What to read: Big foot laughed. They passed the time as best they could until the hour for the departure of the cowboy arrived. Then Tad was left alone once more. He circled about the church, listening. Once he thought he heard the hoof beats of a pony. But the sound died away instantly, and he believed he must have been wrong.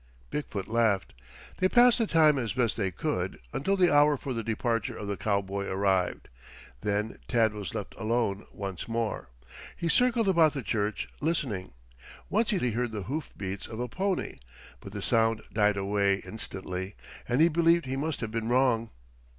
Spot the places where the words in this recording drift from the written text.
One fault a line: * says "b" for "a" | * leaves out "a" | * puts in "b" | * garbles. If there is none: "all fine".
* leaves out "thought"